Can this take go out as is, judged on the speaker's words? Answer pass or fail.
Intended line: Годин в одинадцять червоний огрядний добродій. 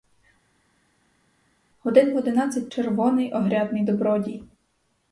pass